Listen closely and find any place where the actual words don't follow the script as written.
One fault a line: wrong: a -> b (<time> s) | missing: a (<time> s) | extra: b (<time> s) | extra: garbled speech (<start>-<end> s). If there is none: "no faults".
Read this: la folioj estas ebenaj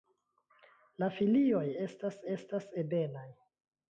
extra: estas (2.3 s)